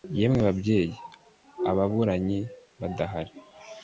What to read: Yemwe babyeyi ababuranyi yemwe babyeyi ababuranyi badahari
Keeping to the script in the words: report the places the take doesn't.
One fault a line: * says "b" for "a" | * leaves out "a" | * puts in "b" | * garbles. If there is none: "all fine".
* leaves out "yemwe babyeyi ababuranyi"